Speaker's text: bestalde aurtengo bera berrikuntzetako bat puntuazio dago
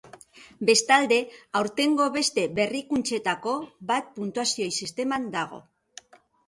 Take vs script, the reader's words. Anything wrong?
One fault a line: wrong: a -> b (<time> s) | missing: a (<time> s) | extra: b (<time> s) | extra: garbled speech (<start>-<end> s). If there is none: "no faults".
wrong: bera -> beste (2.2 s)
extra: sisteman (4.8 s)